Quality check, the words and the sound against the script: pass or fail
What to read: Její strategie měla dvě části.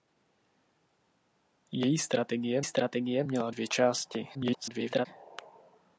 fail